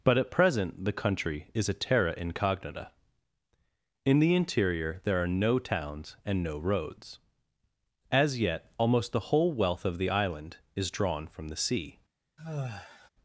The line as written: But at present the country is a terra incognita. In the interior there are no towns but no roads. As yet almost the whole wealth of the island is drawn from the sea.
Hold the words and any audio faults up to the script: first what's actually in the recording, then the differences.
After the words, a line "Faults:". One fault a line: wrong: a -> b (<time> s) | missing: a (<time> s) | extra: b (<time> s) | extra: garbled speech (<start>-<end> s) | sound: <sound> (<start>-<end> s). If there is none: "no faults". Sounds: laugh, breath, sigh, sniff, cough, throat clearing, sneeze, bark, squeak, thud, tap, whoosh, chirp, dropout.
But at present the country is a terra incognita. In the interior there are no towns and no roads. As yet almost the whole wealth of the island is drawn from the sea.
Faults:
wrong: but -> and (6.2 s)
sound: sigh (12.4-13.1 s)